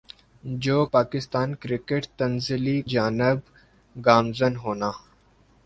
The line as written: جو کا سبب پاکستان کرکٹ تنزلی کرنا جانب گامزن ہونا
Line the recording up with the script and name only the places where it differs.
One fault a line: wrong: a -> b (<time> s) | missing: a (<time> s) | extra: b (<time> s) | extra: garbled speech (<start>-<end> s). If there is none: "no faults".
missing: کا سبب (0.8 s)
missing: کرنا (2.8 s)